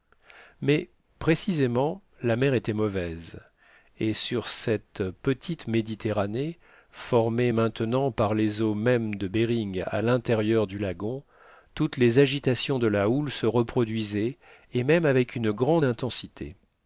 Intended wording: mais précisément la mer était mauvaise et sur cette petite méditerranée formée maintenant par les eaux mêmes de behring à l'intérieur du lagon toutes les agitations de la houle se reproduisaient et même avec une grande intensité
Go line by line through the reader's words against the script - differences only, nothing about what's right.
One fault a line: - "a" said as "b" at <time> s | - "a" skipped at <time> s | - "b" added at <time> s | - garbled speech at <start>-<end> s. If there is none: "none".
none